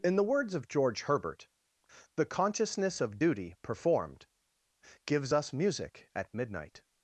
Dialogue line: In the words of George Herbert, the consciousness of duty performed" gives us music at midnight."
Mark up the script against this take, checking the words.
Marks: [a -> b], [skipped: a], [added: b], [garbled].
In the words of George Herbert, the consciousness of duty performed" gives us music at midnight."